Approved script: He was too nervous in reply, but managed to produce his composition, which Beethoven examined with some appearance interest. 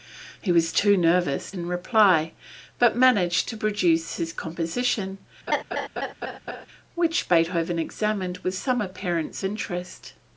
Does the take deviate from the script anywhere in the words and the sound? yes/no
yes